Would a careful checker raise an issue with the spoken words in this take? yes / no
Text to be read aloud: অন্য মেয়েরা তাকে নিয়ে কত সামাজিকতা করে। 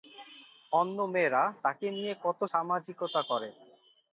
no